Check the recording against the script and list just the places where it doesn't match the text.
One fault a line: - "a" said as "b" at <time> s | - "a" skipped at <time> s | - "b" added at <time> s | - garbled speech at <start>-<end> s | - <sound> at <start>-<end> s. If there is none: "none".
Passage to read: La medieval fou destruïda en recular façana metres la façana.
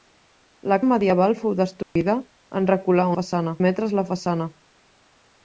- dropout at 1.8-2.0 s